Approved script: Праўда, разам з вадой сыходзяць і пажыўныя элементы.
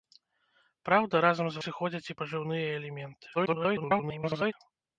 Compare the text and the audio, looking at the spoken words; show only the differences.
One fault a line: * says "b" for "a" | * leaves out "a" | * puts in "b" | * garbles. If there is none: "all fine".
* leaves out "вадой"
* garbles